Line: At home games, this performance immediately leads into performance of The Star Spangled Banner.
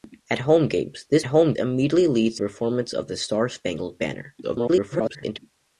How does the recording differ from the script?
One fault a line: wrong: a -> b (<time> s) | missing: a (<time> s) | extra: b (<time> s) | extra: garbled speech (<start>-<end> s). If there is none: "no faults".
wrong: performance -> home (1.2 s)
missing: into (2.4 s)
extra: garbled speech (4.4-5.4 s)